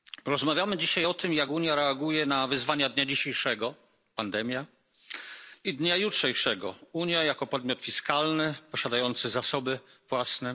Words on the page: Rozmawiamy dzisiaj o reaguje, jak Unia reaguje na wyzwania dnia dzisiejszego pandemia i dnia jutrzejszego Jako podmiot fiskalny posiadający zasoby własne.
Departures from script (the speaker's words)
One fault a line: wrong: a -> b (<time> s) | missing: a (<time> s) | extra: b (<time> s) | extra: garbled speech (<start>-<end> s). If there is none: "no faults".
wrong: reaguje -> tym (1.1 s)
extra: Unia (6.9 s)